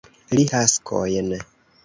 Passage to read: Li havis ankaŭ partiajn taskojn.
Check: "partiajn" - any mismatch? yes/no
yes